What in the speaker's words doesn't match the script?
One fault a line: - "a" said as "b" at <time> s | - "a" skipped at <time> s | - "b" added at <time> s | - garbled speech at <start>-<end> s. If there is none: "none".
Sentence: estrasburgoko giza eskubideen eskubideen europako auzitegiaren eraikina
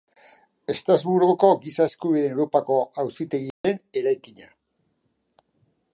- "eskubideen" skipped at 2.3 s